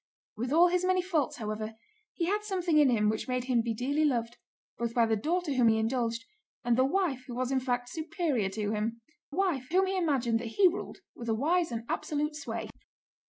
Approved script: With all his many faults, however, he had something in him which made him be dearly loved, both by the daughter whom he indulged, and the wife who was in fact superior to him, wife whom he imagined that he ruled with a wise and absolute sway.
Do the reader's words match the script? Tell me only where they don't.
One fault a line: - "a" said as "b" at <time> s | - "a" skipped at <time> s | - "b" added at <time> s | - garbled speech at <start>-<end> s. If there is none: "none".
none